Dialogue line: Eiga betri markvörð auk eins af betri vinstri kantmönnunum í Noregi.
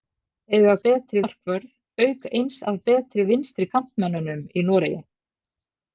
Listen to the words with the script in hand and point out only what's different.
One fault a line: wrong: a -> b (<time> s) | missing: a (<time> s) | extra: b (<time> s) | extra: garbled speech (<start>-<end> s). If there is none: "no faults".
no faults